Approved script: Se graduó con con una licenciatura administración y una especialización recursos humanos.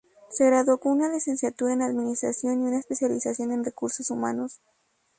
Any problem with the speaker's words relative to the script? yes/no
yes